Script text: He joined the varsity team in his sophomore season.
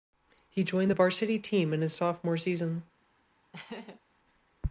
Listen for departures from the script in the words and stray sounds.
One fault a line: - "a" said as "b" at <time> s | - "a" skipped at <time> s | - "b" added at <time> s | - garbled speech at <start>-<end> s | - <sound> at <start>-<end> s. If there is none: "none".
- laugh at 3.5-4.0 s